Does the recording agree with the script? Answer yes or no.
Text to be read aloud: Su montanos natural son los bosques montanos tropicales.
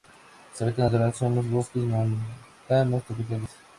no